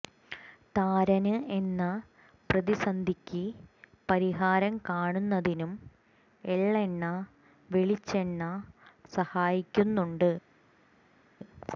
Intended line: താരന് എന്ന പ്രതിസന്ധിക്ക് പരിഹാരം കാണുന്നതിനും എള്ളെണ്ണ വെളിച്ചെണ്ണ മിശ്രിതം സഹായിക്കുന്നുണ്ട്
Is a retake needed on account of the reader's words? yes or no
yes